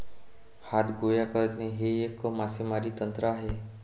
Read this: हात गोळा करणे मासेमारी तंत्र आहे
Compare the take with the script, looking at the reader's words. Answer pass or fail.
fail